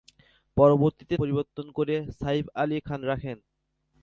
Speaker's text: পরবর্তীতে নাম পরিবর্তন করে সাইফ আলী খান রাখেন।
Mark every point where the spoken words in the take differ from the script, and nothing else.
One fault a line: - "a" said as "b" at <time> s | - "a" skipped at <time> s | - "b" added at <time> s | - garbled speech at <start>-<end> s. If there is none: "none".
- "নাম" skipped at 1.1 s